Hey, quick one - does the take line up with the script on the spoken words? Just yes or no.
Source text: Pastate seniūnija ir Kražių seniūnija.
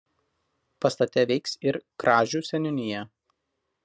no